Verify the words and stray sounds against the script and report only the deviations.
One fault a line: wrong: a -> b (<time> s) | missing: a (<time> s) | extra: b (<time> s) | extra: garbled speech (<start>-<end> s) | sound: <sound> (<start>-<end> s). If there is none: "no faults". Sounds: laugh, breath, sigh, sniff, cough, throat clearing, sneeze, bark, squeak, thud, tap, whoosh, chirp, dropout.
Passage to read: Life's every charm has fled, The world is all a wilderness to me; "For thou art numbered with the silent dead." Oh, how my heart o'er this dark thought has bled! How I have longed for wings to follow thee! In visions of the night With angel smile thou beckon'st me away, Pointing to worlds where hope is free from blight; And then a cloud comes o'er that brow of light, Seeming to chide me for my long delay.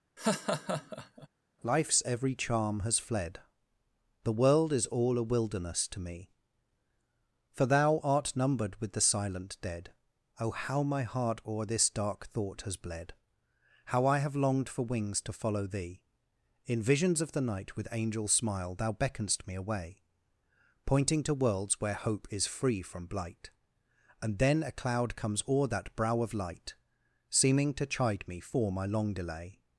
sound: laugh (0.2-1.3 s)